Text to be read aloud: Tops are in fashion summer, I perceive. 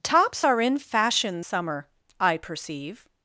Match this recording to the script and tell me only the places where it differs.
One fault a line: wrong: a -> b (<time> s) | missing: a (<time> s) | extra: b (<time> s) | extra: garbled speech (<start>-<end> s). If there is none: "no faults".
no faults